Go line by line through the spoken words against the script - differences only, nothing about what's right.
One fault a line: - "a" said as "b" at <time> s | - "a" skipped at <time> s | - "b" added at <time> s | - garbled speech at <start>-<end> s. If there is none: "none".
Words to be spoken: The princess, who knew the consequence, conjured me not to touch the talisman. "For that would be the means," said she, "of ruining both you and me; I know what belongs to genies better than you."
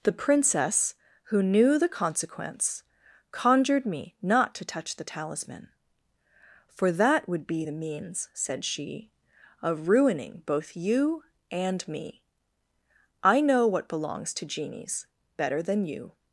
none